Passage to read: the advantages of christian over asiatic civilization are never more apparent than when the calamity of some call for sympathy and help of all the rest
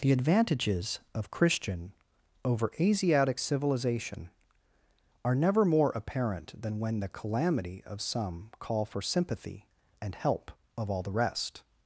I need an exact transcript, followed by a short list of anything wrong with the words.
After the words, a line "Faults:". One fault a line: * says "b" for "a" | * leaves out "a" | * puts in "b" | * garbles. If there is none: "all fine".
the advantages of christian over asiatic civilization are never more apparent than when the calamity of some call for sympathy and help of all the rest
Faults:
all fine